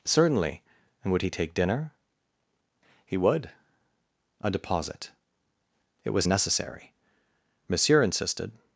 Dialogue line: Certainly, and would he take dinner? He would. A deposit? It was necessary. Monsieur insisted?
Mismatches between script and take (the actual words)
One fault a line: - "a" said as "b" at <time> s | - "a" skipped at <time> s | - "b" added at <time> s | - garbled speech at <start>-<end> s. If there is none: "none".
none